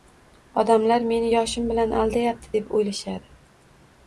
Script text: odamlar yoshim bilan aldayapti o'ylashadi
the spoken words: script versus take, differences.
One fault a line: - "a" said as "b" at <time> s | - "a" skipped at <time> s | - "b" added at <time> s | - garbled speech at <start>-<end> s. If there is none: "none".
- "meni" added at 1.1 s
- "deb" added at 2.6 s